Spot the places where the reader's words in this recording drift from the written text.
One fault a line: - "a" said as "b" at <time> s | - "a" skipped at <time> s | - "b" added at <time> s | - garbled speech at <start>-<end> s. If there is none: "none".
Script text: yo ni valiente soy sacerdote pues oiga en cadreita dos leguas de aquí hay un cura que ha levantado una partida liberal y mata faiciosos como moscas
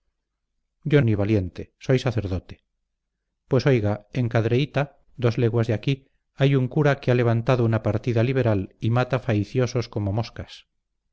none